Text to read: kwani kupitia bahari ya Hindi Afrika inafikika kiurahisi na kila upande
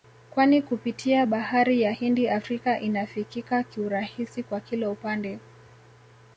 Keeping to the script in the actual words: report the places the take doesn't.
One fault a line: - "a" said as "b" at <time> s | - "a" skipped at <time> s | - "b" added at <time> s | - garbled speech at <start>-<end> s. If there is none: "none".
- "na" said as "kwa" at 4.4 s